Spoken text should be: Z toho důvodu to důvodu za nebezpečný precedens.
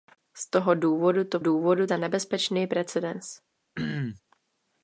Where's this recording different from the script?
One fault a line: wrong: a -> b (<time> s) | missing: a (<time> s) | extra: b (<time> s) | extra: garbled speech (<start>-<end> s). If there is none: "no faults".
no faults